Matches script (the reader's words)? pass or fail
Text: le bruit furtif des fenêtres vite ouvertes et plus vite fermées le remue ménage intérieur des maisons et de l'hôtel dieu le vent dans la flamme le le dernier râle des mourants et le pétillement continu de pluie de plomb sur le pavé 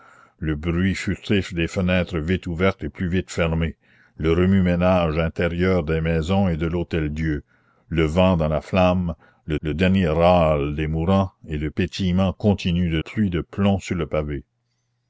pass